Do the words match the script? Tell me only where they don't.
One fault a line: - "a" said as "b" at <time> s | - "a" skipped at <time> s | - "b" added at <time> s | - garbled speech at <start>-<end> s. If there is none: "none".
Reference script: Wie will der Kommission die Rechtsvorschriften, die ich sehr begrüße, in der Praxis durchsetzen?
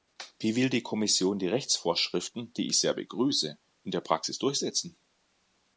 - "der" said as "die" at 0.7 s